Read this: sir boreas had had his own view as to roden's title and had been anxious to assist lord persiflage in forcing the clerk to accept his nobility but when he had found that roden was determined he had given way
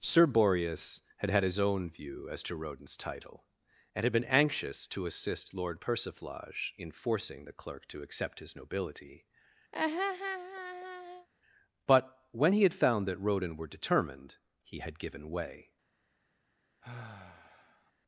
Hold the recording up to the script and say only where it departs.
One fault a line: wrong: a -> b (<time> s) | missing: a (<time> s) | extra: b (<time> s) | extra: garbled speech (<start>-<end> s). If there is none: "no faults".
wrong: was -> were (13.6 s)